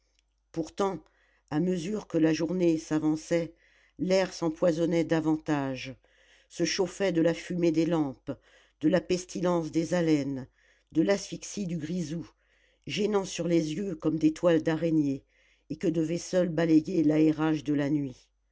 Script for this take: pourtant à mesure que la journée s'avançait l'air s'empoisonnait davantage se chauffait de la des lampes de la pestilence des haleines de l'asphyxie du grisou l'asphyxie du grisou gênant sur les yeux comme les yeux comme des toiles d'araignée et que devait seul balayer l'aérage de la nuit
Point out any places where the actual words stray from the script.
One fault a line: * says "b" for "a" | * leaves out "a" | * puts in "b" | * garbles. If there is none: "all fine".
* puts in "fumée"
* leaves out "l'asphyxie du grisou"
* leaves out "les yeux comme"